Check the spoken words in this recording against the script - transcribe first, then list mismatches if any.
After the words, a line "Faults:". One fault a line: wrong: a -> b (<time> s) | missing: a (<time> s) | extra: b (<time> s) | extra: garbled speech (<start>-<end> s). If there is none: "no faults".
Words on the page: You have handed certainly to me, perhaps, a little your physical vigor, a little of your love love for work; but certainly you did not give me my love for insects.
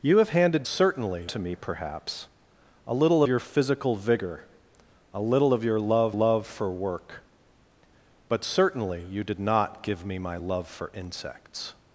You have handed certainly to me, perhaps, a little your physical vigor, a little of your love love for work; but certainly you did not give me my love for insects.
Faults:
no faults